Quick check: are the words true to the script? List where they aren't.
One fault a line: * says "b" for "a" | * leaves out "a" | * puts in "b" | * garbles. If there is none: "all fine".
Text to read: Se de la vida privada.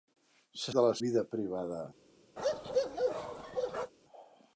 all fine